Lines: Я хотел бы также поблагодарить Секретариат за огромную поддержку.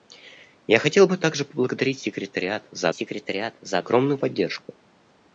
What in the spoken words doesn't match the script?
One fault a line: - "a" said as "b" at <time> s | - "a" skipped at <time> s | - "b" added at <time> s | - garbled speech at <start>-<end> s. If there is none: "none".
- "Секретариат за" added at 2.9 s